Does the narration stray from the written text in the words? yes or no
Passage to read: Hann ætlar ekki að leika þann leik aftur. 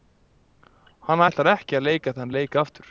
no